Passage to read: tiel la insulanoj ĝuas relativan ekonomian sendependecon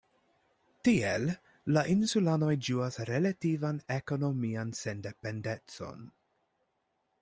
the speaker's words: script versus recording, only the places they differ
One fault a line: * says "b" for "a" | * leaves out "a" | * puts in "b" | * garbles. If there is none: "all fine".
all fine